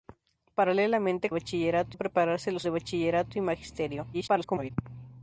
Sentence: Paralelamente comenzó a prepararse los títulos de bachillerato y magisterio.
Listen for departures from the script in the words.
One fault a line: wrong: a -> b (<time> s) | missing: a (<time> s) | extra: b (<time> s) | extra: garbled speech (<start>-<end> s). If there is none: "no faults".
wrong: comenzó -> bachillerato (1.3 s)
missing: títulos (2.7 s)
extra: garbled speech (4.1-4.7 s)